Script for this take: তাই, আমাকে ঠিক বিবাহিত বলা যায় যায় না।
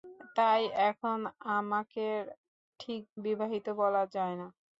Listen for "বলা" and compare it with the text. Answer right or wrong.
right